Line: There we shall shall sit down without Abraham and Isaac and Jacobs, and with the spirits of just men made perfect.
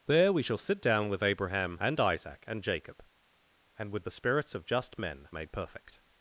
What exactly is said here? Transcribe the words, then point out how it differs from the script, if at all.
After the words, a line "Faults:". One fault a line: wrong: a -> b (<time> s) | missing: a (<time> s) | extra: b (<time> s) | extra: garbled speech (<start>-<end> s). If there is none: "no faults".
There we shall sit down with Abraham and Isaac and Jacob, and with the spirits of just men made perfect.
Faults:
missing: shall (0.6 s)
wrong: without -> with (1.1 s)
wrong: Jacobs -> Jacob (2.6 s)